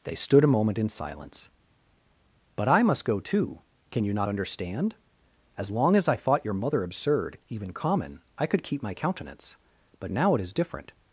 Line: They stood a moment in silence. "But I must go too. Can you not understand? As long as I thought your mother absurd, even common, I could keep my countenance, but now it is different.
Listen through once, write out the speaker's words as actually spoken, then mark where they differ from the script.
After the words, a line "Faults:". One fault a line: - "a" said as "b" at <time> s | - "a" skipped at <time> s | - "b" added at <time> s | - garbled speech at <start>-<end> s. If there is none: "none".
They stood a moment in silence. "But I must go too. Can you not understand? As long as I thought your mother absurd, even common, I could keep my countenance, but now it is different.
Faults:
none